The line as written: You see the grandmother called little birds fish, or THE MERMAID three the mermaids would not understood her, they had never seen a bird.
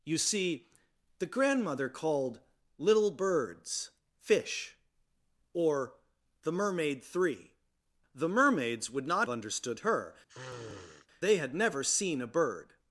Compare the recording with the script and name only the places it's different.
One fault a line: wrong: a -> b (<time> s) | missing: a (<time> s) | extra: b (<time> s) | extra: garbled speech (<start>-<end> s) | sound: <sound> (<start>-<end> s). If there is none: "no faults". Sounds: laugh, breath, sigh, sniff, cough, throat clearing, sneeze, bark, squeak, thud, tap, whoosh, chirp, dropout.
sound: sniff (10.3-11.1 s)